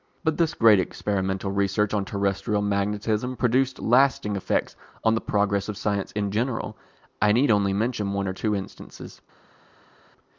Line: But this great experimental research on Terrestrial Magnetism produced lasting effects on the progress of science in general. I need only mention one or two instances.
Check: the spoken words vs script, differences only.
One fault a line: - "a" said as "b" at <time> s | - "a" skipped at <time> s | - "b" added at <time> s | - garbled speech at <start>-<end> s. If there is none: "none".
none